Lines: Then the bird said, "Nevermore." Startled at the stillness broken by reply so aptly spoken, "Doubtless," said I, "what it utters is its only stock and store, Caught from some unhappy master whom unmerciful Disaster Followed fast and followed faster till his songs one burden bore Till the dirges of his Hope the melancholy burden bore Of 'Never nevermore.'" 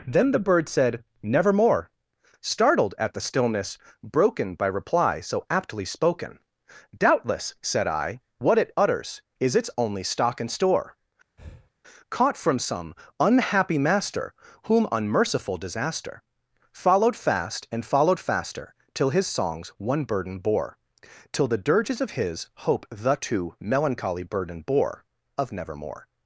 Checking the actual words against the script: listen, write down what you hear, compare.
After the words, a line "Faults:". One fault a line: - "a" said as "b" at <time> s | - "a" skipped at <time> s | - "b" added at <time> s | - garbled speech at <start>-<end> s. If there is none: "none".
Then the bird said, "Nevermore." Startled at the stillness broken by reply so aptly spoken, "Doubtless," said I, "what it utters is its only stock and store, Caught from some unhappy master whom unmerciful Disaster Followed fast and followed faster till his songs one burden bore Till the dirges of his Hope the too melancholy burden bore Of nevermore.'"
Faults:
- "too" added at 23.2 s
- "Never" skipped at 25.5 s